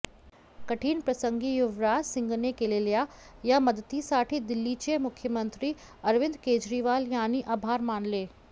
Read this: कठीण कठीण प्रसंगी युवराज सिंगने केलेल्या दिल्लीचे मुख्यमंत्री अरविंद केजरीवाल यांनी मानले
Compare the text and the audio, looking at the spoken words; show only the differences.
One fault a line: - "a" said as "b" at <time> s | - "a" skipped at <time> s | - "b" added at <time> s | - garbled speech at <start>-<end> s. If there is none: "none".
- "कठीण" skipped at 1.0 s
- "या मदतीसाठी" added at 3.4 s
- "आभार" added at 7.5 s